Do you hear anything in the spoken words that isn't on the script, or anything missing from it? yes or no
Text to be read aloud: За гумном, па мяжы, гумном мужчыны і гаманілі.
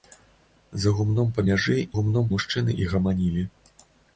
no